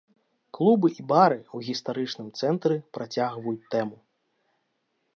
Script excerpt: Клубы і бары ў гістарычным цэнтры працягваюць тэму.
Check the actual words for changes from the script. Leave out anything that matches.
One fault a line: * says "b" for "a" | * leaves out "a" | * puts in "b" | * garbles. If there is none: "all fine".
all fine